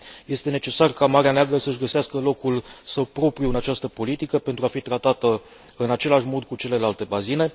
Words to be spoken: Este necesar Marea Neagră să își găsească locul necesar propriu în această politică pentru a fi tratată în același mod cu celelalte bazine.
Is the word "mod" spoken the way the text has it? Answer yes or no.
yes